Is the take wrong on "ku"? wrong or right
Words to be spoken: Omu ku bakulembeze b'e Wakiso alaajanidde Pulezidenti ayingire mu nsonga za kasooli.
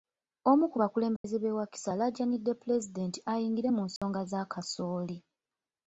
right